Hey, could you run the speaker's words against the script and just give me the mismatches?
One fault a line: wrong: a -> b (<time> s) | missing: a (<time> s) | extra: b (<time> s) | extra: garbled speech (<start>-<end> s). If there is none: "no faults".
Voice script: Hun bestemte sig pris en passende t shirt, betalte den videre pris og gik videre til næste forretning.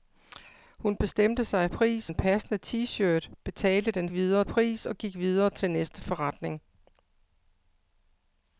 no faults